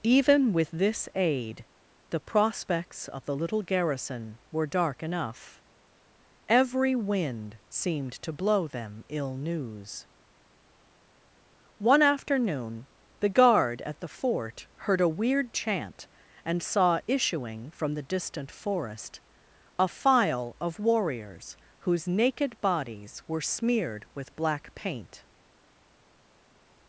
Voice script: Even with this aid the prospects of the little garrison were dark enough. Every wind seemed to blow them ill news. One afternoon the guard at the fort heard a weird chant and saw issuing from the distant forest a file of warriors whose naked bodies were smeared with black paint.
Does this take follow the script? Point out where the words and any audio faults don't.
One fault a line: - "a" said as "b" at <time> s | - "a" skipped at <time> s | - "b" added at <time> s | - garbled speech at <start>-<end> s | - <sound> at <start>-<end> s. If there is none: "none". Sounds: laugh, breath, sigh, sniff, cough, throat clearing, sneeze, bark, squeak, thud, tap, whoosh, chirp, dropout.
none